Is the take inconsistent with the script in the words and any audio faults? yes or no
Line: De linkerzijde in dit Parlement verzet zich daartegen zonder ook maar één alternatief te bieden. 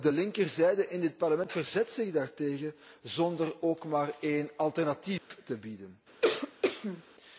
yes